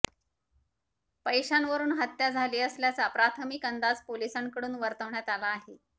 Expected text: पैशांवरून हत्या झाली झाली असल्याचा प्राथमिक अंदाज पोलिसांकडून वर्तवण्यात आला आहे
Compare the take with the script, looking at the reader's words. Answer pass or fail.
fail